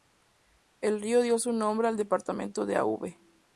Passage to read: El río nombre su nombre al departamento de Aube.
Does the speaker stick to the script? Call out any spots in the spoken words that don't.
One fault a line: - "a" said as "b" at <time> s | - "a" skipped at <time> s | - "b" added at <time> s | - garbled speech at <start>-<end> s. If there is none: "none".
- "nombre" said as "dio" at 1.2 s